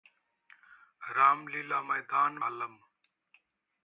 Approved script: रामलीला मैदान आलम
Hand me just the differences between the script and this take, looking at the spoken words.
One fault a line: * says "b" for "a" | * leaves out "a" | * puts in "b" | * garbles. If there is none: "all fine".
all fine